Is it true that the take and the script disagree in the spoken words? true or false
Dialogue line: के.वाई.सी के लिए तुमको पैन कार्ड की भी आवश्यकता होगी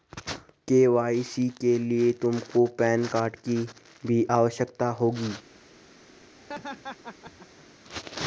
false